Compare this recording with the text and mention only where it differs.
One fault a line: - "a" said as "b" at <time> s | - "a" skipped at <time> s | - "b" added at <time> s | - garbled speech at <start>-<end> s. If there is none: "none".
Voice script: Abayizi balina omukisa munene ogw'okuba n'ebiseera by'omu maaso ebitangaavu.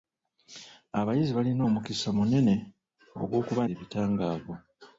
- "n'ebiseera by'omu maaso" skipped at 3.6 s